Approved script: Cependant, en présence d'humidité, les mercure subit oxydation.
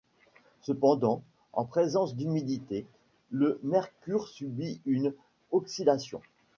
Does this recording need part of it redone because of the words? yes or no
yes